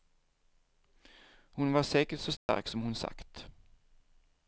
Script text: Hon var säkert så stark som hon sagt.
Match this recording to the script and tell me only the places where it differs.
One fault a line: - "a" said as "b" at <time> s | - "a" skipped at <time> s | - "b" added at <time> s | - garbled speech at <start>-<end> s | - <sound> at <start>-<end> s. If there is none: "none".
- dropout at 2.4-2.5 s